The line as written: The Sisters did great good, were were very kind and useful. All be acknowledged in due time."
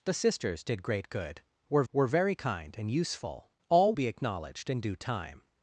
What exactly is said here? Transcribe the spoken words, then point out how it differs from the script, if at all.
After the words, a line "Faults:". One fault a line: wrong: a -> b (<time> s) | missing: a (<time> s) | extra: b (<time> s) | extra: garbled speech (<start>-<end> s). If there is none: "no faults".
The Sisters did great good, were were very kind and useful. All be acknowledged in due time."
Faults:
no faults